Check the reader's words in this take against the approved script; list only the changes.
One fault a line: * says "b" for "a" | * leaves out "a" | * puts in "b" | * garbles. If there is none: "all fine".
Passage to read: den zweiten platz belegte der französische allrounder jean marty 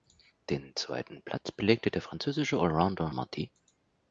* leaves out "jean"